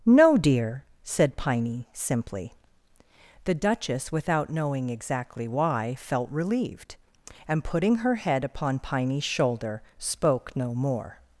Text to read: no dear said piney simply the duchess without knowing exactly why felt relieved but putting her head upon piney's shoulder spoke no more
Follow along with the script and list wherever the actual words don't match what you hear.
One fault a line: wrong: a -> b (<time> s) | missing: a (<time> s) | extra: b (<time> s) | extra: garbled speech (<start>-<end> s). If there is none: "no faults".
wrong: but -> and (7.5 s)